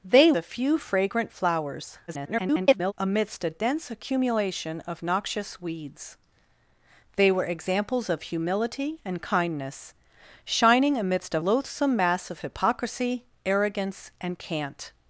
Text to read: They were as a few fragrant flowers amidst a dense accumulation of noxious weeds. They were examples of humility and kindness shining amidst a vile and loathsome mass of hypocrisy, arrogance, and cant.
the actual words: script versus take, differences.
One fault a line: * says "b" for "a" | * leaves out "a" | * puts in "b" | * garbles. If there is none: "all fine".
* leaves out "were as"
* garbles
* leaves out "vile and"